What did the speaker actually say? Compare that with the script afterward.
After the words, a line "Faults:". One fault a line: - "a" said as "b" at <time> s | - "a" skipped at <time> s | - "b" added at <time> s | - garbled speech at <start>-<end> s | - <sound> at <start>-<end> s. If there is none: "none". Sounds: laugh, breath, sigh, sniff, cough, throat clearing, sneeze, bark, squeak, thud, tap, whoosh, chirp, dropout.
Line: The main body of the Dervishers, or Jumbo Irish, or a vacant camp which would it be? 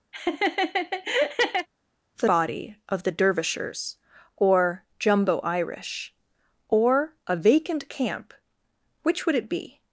The body of the Dervishers, or Jumbo Irish, or a vacant camp which would it be?
Faults:
- laugh at 0.1-1.7 s
- "main" skipped at 2.3 s